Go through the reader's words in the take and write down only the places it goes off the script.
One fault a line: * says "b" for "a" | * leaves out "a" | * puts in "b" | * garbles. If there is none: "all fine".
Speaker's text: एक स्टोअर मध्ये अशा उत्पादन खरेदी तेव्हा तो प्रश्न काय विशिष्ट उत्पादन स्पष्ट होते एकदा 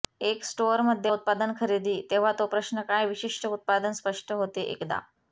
* leaves out "अशा"